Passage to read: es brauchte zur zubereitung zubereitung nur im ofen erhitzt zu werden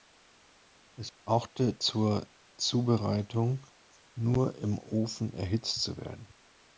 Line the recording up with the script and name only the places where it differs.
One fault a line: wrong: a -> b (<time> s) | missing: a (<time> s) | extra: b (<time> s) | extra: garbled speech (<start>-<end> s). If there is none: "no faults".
missing: zubereitung (3.7 s)